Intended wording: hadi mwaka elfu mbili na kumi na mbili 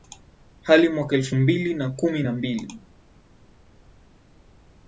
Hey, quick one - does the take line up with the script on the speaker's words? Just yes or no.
yes